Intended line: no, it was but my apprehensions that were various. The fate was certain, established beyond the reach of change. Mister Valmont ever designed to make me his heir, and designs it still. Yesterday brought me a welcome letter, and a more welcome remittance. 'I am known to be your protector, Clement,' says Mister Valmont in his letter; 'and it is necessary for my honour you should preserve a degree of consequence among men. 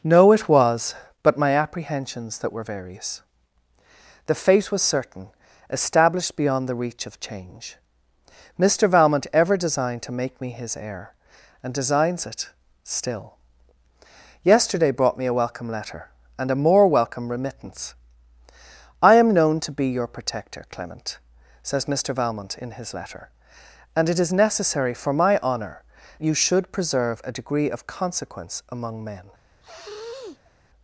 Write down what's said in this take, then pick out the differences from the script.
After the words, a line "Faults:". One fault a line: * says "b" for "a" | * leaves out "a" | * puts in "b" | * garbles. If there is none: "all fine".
no, it was but my apprehensions that were various. The fate was certain, established beyond the reach of change. Mister Valmont ever designed to make me his heir, and designs it still. Yesterday brought me a welcome letter, and a more welcome remittance. 'I am known to be your protector, Clement,' says Mister Valmont in his letter; 'and it is necessary for my honour you should preserve a degree of consequence among men.
Faults:
all fine